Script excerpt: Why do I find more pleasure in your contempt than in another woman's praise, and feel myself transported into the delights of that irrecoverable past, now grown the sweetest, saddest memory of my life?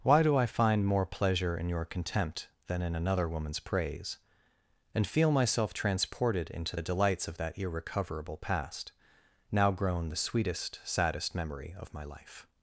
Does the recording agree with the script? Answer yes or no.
yes